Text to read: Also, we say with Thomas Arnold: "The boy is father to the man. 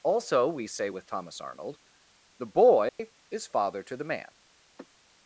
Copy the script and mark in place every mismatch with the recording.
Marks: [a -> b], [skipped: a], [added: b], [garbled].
Also, we say with Thomas Arnold: "The boy is father to the man.